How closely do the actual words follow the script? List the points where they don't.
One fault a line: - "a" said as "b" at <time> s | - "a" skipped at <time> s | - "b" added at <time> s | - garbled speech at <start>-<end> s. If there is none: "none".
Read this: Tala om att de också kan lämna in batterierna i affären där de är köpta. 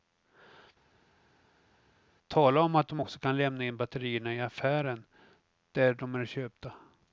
none